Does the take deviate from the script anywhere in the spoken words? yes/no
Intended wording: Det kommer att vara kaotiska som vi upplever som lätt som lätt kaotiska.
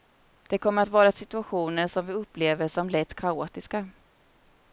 yes